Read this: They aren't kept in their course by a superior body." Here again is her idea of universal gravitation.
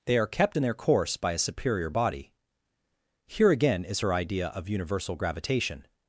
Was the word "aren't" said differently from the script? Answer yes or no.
yes